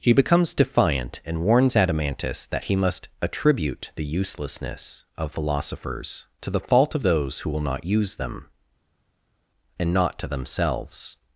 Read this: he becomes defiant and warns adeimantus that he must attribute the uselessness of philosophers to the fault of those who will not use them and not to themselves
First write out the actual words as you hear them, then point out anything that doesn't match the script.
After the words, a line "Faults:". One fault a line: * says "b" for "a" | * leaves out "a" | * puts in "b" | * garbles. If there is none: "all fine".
he becomes defiant and warns adeimantus that he must attribute the uselessness of philosophers to the fault of those who will not use them and not to themselves
Faults:
all fine